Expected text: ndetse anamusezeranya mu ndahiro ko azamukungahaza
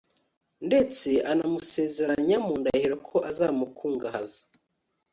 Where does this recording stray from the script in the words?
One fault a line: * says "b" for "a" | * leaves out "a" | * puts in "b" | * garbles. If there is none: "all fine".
all fine